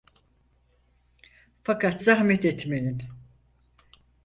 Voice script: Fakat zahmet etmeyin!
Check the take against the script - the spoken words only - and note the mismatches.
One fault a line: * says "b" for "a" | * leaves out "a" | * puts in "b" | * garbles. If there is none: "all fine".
all fine